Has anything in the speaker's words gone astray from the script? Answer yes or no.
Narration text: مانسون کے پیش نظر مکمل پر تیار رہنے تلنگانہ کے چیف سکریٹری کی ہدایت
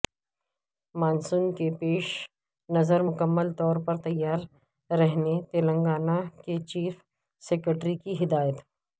yes